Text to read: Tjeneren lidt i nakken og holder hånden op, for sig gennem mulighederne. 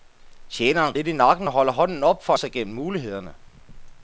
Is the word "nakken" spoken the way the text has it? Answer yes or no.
yes